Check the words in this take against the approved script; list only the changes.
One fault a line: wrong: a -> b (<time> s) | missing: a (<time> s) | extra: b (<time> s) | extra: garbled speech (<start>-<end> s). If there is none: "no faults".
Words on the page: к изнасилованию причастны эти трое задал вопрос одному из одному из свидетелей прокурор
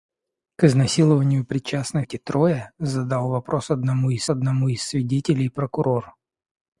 no faults